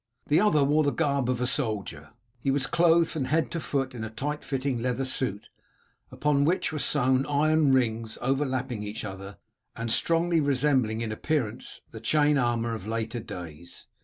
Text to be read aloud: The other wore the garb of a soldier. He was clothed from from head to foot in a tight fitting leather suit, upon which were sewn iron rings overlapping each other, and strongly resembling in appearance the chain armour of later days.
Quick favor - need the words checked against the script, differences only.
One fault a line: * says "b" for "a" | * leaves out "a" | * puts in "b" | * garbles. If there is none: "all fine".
* leaves out "from"